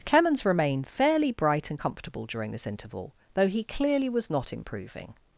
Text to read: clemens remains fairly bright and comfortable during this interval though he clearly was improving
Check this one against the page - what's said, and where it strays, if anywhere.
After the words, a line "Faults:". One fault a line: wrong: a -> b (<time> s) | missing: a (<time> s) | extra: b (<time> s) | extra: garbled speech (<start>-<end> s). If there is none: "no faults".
clemens remained fairly bright and comfortable during this interval though he clearly was not improving
Faults:
wrong: remains -> remained (0.5 s)
extra: not (4.3 s)